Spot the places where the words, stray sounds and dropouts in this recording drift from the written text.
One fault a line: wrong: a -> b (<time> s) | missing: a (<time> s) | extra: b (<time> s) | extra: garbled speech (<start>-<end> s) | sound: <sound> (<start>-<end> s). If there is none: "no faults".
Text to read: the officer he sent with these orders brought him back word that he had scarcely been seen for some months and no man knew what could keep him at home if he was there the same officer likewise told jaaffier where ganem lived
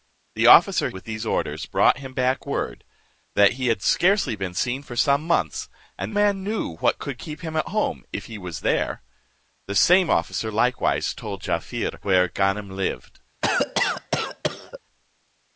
missing: he sent (0.9 s)
missing: no (6.1 s)
sound: cough (13.4-14.8 s)